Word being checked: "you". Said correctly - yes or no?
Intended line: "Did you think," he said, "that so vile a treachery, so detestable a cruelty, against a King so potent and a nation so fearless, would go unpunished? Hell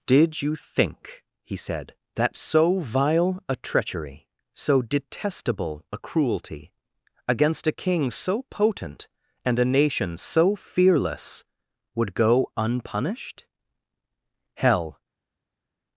yes